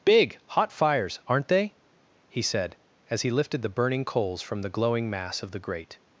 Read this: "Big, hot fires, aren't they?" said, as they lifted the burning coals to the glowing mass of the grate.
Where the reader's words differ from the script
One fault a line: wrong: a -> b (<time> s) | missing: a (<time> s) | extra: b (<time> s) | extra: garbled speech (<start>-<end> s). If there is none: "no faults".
extra: he (2.3 s)
wrong: they -> he (3.2 s)
wrong: to -> from (4.4 s)